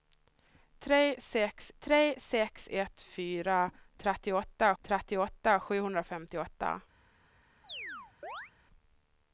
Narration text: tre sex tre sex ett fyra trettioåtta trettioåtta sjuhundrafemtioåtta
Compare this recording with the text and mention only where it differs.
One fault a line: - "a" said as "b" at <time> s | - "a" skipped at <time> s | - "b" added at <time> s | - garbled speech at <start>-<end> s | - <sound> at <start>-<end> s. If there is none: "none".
- chirp at 7.6-8.5 s